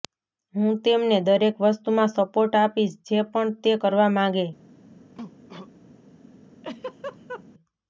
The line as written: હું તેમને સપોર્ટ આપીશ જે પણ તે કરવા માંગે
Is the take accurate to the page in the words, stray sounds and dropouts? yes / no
no